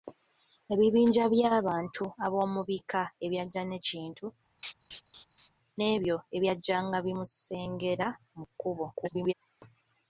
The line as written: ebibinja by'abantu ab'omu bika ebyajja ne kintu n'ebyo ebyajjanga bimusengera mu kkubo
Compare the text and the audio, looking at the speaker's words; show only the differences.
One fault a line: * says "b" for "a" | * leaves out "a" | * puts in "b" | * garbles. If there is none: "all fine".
* garbles